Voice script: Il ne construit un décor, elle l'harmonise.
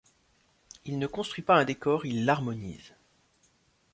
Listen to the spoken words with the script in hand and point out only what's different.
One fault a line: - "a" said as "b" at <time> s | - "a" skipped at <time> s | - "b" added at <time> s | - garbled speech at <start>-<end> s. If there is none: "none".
- "pas" added at 1.4 s
- "elle" said as "il" at 2.1 s